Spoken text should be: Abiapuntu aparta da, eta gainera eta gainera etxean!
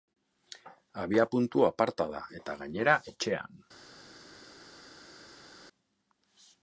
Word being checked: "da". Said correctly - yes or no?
yes